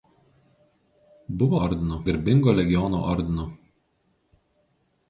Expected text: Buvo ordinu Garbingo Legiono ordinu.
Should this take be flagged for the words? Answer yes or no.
no